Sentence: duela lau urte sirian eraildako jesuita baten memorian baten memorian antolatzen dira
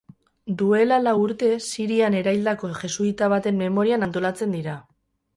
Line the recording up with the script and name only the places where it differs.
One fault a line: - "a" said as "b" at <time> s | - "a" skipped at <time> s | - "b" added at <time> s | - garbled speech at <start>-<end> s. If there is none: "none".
- "baten memorian" skipped at 4.1 s